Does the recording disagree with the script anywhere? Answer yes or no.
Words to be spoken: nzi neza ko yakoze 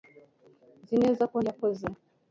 no